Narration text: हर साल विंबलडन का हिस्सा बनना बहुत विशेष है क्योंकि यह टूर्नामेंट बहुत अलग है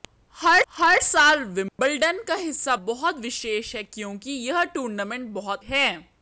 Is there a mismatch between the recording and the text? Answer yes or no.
yes